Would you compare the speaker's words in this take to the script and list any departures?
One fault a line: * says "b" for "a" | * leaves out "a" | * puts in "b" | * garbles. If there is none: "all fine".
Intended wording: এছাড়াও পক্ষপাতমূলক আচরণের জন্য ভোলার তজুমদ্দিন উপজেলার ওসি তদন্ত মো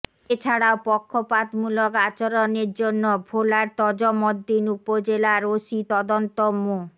all fine